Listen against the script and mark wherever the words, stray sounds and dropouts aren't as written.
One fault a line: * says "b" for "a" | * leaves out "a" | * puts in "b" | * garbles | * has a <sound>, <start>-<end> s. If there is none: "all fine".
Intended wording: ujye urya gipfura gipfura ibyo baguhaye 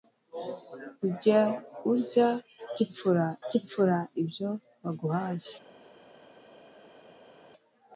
all fine